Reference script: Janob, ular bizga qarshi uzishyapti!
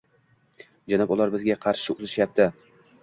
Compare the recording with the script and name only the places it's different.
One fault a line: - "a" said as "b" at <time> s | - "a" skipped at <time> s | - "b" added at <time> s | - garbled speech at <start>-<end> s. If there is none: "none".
none